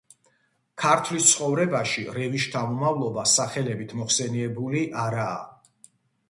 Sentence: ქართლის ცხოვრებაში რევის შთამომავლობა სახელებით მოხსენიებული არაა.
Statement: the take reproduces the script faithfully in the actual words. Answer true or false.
true